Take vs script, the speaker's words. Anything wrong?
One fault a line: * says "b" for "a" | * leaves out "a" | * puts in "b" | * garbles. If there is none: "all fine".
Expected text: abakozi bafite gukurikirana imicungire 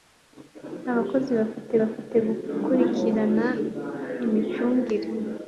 * puts in "bafite"